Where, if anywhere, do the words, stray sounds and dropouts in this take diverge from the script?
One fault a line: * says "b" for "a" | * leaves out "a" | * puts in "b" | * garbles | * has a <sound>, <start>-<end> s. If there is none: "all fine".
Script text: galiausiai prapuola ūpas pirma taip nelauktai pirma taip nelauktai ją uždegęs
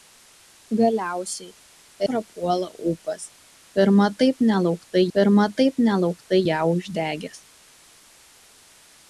all fine